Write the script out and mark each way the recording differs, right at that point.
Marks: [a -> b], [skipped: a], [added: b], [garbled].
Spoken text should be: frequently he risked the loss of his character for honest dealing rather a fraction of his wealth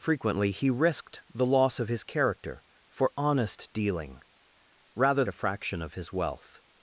frequently he risked the loss of his character for honest dealing rather a fraction of his wealth